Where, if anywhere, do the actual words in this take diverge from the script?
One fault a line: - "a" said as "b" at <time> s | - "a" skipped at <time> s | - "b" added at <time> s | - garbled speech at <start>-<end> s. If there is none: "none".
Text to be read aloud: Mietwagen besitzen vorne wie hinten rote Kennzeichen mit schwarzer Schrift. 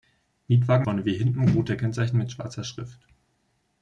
- "besitzen" skipped at 0.9 s